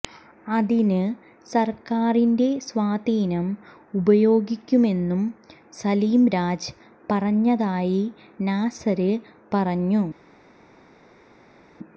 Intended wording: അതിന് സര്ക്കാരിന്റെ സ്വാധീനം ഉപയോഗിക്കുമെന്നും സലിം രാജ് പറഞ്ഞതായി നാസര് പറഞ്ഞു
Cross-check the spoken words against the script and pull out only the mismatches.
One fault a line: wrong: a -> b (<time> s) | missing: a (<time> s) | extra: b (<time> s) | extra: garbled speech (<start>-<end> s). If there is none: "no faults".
no faults